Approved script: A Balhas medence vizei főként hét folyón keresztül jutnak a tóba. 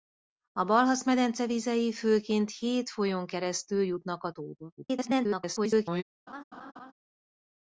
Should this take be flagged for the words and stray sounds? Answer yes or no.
yes